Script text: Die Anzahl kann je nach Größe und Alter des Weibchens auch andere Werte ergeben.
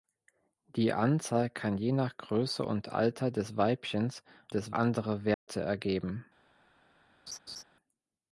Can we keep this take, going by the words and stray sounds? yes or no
no